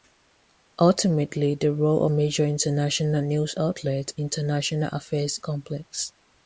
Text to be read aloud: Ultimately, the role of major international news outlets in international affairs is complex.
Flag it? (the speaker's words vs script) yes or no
yes